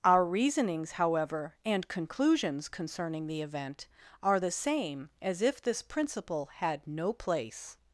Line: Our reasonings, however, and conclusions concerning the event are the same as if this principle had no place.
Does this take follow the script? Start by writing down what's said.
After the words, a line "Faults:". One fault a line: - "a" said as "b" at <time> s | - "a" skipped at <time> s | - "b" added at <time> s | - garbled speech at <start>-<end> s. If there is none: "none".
Our reasonings, however, and conclusions concerning the event are the same as if this principle had no place.
Faults:
none